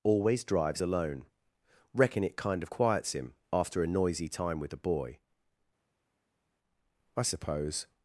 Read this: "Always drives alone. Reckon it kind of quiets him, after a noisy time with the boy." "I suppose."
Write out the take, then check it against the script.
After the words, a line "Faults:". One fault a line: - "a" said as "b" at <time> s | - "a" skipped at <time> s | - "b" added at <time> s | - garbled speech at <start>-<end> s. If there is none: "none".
"Always drives alone. Reckon it kind of quiets him, after a noisy time with the boy." "I suppose."
Faults:
none